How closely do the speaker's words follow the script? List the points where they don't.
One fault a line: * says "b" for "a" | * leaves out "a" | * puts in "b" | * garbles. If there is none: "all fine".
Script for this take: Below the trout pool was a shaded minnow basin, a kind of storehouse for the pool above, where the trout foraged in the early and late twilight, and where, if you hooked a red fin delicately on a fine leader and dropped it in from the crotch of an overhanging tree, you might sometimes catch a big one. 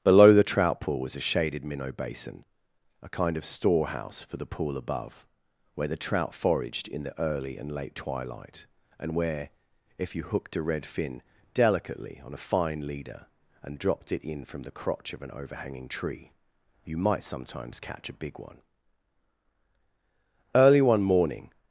* puts in "Early one morning"